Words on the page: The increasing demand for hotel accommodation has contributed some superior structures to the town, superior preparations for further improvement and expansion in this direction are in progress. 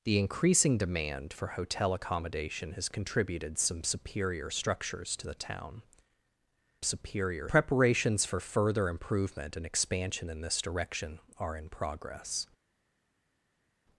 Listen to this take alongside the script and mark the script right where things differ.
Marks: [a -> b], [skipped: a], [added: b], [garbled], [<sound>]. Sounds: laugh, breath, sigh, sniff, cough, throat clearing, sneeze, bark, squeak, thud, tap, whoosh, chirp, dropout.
The increasing demand for hotel accommodation has contributed some superior structures to the town, superior preparations for further improvement and expansion in this direction are in progress.